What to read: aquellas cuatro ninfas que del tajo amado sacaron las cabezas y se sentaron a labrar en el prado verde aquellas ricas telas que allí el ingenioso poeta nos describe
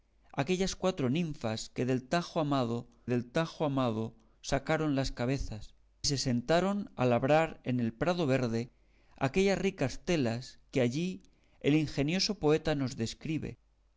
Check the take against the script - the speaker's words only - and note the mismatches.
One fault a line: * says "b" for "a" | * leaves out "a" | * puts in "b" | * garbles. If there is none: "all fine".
* puts in "del tajo amado"
* leaves out "y"